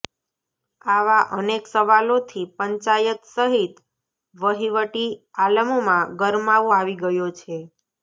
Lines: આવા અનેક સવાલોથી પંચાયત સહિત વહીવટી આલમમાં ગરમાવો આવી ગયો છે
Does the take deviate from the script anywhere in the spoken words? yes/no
no